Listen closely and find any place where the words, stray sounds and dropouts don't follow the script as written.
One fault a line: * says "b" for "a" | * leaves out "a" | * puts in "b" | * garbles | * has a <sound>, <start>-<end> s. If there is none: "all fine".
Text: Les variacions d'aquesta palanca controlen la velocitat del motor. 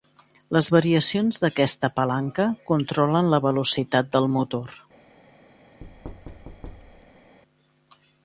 * has a thud, 5.8-7.4 s